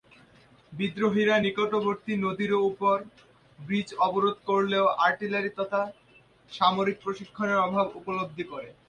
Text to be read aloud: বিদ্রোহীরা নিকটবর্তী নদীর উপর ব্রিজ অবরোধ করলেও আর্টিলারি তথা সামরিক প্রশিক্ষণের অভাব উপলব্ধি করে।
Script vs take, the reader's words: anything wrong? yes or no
no